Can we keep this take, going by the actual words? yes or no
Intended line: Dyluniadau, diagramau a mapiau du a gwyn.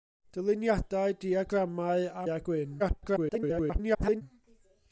no